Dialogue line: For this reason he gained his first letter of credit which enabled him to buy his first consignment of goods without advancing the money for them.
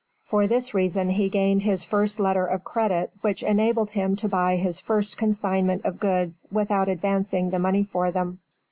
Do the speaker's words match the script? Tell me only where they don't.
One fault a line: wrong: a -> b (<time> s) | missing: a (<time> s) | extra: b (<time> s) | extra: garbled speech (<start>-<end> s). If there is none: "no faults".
no faults